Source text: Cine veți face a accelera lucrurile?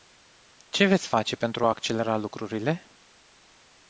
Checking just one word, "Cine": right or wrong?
wrong